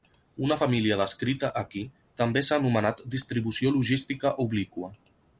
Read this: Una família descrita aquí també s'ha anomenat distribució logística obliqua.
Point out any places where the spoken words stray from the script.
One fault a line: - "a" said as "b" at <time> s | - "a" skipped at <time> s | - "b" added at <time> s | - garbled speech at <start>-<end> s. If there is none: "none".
none